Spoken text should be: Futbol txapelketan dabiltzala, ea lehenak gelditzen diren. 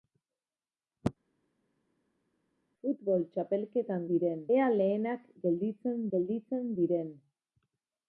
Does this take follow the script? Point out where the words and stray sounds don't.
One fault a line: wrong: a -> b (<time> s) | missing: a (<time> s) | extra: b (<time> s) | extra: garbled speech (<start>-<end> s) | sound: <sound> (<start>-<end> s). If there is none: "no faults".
wrong: dabiltzala -> diren (4.1 s)
extra: gelditzen (6.1 s)